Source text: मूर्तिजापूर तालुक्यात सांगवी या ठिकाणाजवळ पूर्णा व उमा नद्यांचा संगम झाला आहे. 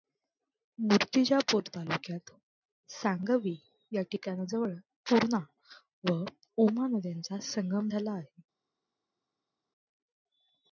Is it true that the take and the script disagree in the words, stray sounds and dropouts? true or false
false